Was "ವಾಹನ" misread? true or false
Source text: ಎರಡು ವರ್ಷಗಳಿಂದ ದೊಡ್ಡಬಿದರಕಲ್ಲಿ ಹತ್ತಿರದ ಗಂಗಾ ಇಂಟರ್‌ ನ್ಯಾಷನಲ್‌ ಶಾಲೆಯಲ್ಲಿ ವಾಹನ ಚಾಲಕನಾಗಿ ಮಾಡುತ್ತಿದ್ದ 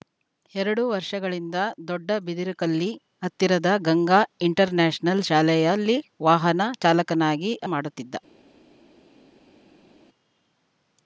false